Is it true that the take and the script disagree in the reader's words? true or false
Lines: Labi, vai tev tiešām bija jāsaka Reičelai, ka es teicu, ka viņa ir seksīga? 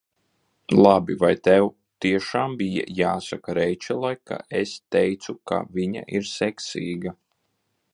false